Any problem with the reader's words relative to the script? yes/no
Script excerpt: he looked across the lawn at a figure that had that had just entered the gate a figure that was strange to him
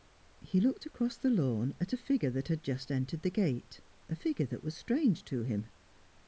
yes